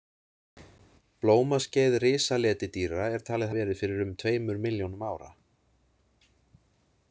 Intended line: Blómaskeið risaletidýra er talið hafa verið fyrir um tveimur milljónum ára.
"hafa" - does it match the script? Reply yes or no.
no